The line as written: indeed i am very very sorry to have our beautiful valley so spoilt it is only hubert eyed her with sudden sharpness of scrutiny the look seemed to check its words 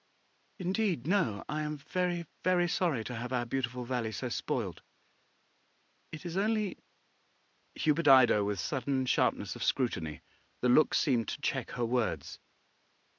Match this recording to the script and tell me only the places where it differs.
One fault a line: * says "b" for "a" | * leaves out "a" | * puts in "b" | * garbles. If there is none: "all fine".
* puts in "no"
* says "her" for "its"